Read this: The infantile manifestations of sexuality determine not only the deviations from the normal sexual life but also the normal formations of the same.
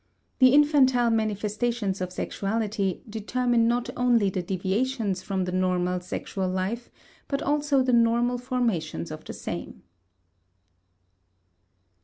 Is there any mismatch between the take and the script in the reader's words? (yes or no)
no